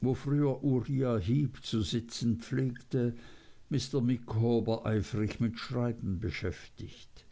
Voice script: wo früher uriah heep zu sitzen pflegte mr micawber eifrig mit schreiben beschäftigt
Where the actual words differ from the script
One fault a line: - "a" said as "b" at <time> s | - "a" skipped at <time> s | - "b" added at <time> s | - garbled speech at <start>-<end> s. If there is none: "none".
none